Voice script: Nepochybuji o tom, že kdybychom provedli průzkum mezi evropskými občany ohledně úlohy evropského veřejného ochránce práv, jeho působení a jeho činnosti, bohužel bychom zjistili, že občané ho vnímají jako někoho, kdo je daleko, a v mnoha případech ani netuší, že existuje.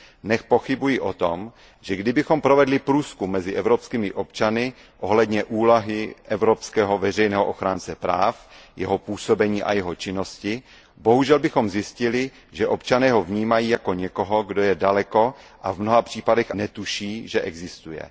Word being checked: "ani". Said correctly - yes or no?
no